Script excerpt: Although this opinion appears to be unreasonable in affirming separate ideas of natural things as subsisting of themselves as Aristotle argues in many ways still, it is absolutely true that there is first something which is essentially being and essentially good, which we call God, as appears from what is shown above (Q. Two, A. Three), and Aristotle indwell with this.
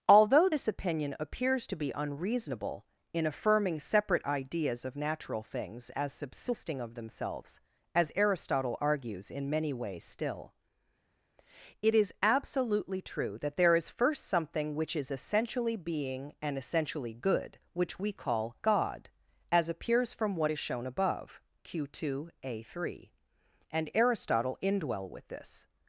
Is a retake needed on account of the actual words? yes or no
no